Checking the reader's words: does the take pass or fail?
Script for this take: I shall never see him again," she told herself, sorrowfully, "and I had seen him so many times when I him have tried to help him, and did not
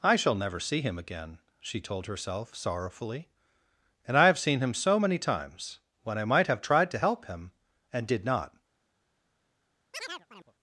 fail